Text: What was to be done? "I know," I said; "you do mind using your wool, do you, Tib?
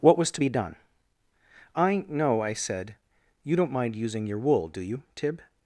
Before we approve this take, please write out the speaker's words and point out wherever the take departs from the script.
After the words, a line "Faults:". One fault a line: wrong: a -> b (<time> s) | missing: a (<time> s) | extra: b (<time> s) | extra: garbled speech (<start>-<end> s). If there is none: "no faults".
What was to be done? "I know," I said; "you don't mind using your wool, do you, Tib?
Faults:
wrong: do -> don't (3.6 s)